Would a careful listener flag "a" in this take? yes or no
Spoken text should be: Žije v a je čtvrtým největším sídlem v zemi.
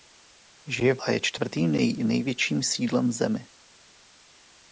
no